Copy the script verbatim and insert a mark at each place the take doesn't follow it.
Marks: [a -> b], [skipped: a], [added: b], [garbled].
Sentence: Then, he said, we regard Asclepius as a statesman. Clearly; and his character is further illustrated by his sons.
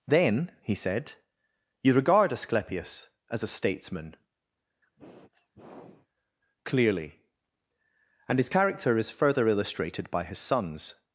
Then, he said, [we -> you] regard Asclepius as a statesman. Clearly; and his character is further illustrated by his sons.